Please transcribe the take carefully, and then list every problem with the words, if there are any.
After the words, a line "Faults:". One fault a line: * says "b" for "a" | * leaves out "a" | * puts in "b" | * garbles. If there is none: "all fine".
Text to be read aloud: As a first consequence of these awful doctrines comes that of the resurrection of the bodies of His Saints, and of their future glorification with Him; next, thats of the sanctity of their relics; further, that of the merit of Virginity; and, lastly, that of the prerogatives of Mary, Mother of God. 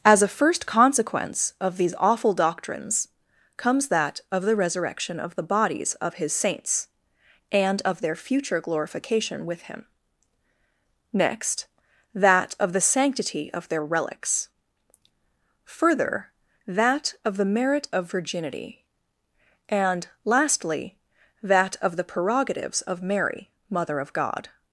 As a first consequence of these awful doctrines comes that of the resurrection of the bodies of His Saints, and of their future glorification with Him; next, that of the sanctity of their relics; further, that of the merit of Virginity; and, lastly, that of the prerogatives of Mary, Mother of God.
Faults:
* says "that" for "thats"